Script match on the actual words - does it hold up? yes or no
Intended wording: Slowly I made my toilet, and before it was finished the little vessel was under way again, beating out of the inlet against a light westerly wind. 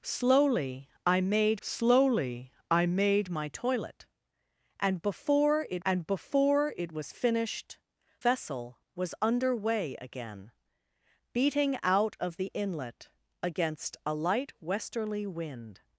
no